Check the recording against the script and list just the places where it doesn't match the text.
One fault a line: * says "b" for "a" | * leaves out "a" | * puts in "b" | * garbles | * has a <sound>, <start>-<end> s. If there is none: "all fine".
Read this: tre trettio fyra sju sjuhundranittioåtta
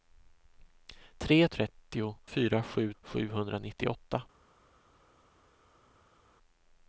all fine